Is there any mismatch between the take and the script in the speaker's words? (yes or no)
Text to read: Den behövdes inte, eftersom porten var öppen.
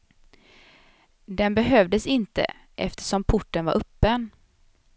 no